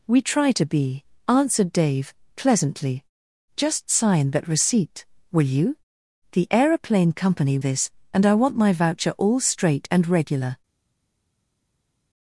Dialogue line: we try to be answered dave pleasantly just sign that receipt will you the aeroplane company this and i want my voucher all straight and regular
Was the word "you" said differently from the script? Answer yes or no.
no